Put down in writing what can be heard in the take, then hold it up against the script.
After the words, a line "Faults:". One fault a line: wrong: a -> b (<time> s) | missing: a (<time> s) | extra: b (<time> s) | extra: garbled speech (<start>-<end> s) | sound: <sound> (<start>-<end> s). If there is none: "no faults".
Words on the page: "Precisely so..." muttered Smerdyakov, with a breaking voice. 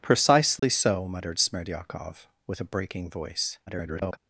"Precisely so..." muttered Smerdyakov, with a breaking voice. [garbled]
Faults:
sound: dropout (0.6-0.6 s)
extra: garbled speech (3.7-4.2 s)